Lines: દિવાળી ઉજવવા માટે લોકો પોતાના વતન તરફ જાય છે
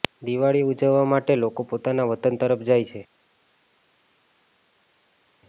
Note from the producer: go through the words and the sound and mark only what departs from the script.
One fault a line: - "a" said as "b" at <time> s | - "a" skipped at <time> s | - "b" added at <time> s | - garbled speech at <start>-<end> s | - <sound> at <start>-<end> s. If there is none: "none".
none